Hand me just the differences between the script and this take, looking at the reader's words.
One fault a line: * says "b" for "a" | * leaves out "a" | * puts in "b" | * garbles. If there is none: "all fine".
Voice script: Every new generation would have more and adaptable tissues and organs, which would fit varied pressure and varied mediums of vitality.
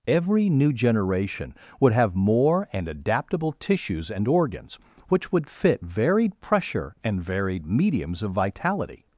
all fine